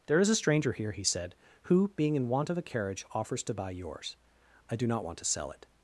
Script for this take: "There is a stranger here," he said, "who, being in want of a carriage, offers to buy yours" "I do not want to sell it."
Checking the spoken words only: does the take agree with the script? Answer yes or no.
yes